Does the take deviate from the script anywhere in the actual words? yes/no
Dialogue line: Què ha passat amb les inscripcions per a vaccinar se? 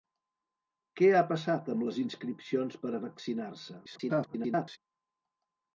yes